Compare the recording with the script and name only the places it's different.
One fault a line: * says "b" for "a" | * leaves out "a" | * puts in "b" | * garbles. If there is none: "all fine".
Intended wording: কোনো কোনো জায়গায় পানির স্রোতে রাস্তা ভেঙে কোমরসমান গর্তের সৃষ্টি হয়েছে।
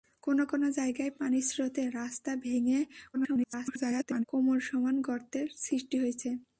* garbles